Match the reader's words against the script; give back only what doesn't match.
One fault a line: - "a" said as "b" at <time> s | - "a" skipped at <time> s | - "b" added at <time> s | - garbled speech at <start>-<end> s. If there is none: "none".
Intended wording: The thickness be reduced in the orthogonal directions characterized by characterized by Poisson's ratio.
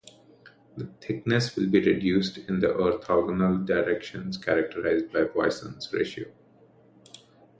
- "will" added at 1.6 s
- "characterized by" skipped at 5.2 s